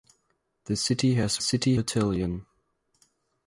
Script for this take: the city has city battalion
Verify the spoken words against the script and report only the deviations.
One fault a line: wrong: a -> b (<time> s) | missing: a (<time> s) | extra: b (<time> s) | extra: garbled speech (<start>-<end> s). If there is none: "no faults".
no faults